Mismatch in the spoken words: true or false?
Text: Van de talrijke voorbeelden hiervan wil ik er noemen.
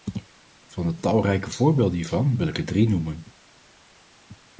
true